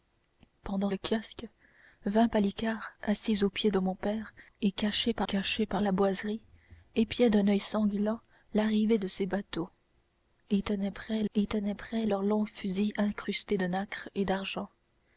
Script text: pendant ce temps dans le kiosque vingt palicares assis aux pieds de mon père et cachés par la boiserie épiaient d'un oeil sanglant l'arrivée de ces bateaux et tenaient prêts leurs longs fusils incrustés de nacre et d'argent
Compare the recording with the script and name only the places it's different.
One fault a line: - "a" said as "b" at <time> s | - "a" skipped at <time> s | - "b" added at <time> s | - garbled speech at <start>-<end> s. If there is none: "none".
- "ce temps dans" skipped at 0.9 s
- "cachés par" added at 5.2 s
- "et tenaient prêts" added at 11.3 s